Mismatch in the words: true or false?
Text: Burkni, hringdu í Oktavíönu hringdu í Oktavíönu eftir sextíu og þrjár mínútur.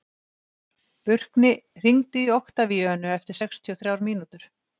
true